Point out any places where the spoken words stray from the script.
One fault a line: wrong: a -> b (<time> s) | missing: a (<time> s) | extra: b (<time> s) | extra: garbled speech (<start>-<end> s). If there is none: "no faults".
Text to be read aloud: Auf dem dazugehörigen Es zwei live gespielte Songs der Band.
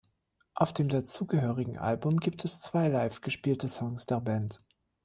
extra: Album gibt (1.8 s)